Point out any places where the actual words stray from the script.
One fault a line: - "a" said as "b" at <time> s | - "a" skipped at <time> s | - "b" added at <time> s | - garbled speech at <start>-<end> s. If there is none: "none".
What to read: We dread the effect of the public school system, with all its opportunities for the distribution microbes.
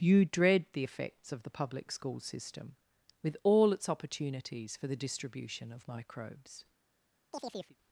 - "We" said as "You" at 0.0 s
- "effect" said as "effects" at 0.8 s
- "of" added at 5.7 s